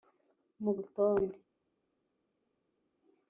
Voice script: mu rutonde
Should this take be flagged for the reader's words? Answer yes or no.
no